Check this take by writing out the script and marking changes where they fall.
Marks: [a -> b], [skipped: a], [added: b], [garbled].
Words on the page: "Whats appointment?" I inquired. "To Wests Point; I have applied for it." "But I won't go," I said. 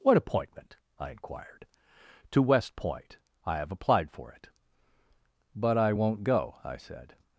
["Whats -> What] appointment?" I inquired. "To [Wests -> West] Point; I have applied for it." "But I won't go," I said.